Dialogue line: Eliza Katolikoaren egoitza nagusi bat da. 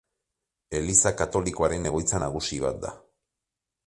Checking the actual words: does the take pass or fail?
pass